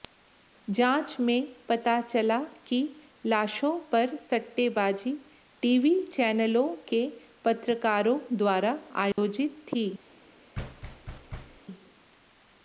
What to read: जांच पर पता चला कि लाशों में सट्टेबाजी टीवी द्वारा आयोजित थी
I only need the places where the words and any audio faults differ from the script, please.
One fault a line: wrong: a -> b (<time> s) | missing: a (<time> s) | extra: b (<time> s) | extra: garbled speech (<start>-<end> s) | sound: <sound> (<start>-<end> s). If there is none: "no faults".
wrong: पर -> में (1.2 s)
wrong: में -> पर (3.9 s)
extra: चैनलों के पत्रकारों (6.1 s)
sound: dropout (9.1-9.2 s)
sound: thud (10.5-11.6 s)